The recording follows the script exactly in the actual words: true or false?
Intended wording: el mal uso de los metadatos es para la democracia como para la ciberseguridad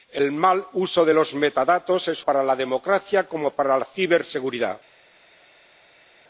true